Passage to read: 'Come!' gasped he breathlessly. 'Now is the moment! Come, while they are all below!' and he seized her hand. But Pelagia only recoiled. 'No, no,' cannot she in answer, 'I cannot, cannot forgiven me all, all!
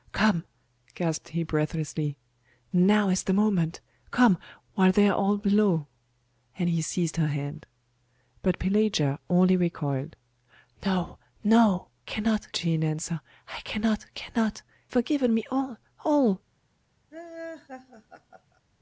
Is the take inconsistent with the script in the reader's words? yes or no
no